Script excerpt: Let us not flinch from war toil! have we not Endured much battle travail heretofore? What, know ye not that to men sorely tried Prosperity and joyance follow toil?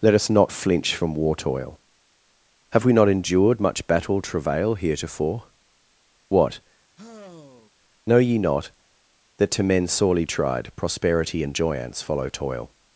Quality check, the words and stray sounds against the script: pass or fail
fail